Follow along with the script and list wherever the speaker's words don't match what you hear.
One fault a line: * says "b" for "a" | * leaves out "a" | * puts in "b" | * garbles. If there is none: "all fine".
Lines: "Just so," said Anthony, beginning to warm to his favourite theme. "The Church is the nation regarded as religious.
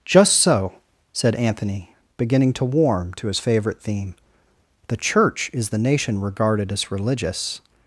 all fine